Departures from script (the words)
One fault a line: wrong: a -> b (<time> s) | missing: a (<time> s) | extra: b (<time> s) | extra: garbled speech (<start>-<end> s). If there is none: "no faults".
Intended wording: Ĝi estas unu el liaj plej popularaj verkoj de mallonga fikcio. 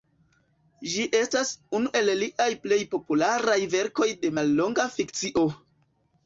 no faults